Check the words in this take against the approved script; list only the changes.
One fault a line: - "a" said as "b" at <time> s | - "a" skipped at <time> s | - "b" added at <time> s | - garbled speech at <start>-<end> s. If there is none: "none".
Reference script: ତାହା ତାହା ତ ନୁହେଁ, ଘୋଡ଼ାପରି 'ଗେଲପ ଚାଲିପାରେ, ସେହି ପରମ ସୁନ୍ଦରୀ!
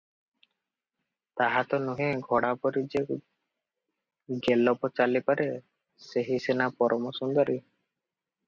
- "ତାହା" skipped at 1.6 s
- "ଯେ" added at 2.9 s
- "ସିନା" added at 6.5 s